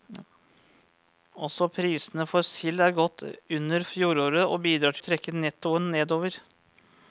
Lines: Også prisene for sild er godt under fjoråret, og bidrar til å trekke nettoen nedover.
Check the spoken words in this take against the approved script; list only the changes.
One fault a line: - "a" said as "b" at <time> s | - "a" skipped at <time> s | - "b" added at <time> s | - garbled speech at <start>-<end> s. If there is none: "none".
- "til" skipped at 5.0 s